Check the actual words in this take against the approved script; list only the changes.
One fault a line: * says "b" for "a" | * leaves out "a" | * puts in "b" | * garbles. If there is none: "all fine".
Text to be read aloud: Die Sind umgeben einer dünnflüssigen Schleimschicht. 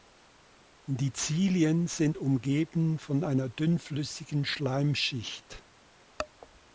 * puts in "Zilien"
* puts in "von"